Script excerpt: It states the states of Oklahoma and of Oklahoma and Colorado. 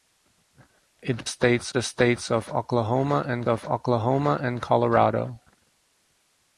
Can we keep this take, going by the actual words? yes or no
yes